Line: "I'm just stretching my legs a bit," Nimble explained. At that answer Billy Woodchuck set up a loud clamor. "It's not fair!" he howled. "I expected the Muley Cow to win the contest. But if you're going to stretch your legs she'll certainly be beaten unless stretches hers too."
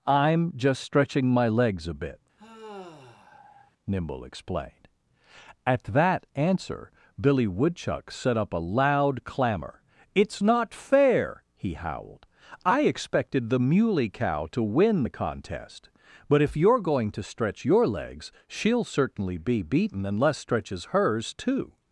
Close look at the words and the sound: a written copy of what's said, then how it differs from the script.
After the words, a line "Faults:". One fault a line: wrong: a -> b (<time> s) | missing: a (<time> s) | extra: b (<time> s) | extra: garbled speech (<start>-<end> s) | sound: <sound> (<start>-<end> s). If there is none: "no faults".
"I'm just stretching my legs a bit," Nimble explained. At that answer Billy Woodchuck set up a loud clamor. "It's not fair!" he howled. "I expected the Muley Cow to win the contest. But if you're going to stretch your legs she'll certainly be beaten unless stretches hers too."
Faults:
sound: sigh (2.4-3.7 s)